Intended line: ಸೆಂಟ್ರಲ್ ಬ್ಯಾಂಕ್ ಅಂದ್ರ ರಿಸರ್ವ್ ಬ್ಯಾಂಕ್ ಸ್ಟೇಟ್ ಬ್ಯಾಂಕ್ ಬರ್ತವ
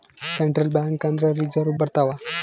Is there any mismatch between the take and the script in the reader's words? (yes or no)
yes